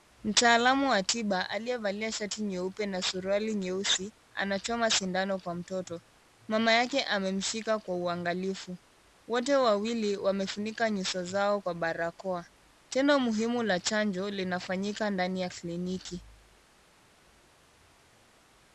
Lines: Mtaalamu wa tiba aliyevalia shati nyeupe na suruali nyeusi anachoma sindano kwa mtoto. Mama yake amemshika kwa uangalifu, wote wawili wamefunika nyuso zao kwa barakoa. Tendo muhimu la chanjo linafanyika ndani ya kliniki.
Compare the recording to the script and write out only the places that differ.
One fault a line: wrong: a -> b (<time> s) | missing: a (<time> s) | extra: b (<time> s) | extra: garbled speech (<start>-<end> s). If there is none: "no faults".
no faults